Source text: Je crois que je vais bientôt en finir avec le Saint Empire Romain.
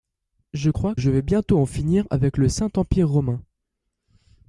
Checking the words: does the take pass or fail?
fail